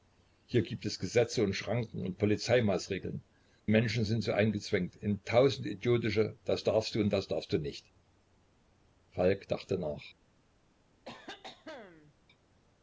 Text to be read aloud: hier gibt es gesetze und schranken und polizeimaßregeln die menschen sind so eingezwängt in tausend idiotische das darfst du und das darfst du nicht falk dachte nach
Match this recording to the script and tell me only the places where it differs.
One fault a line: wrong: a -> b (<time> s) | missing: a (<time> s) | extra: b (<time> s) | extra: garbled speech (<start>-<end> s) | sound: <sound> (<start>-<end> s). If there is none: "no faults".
missing: die (3.2 s)
sound: cough (11.0-12.1 s)